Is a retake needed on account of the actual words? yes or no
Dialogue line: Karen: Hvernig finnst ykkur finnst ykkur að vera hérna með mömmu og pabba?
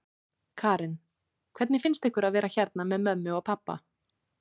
yes